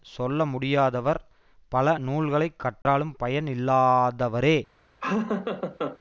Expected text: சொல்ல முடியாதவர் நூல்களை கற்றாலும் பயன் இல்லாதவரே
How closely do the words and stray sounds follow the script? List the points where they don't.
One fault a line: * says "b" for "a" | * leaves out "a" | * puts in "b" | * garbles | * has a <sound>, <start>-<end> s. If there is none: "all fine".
* puts in "பல"
* has a dropout, 2.8-2.9 s
* has a laugh, 5.0-6.0 s